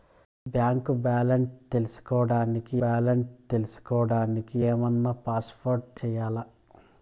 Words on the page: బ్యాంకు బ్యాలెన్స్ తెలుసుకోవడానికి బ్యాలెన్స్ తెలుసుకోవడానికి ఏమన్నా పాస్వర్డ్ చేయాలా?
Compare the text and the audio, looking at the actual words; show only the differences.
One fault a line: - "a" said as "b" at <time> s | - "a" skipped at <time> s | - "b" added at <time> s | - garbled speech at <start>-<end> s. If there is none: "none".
none